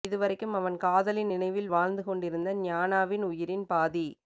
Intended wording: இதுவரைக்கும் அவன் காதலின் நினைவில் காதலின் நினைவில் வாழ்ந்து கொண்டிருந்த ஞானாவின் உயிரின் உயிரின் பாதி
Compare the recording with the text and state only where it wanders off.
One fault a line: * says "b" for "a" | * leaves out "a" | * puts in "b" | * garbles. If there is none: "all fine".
* leaves out "காதலின் நினைவில்"
* leaves out "உயிரின்"